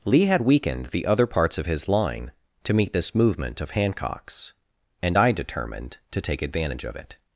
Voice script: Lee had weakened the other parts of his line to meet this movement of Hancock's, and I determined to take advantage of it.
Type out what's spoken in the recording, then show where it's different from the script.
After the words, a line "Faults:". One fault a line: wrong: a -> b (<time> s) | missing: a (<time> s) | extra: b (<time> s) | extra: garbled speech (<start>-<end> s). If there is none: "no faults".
Lee had weakened the other parts of his line to meet this movement of Hancock's, and I determined to take advantage of it.
Faults:
no faults